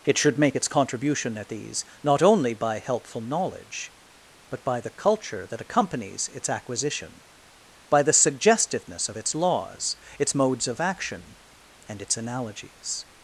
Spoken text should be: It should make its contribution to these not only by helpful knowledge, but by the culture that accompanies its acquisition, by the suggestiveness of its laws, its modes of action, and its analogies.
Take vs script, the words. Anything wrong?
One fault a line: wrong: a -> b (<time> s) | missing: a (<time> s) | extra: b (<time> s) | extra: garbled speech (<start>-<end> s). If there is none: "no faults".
wrong: to -> at (1.4 s)